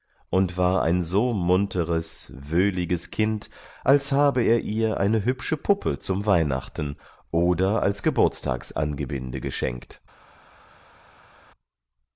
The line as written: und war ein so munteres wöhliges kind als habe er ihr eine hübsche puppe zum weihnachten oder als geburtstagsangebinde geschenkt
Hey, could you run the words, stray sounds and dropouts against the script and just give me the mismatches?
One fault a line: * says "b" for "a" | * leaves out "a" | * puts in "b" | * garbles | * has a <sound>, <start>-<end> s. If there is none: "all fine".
all fine